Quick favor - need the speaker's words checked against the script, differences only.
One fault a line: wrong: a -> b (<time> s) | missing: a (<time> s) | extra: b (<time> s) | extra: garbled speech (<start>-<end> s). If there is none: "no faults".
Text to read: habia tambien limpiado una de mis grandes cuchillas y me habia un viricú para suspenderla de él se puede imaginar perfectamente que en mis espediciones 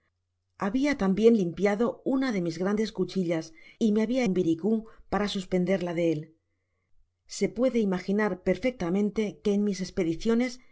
no faults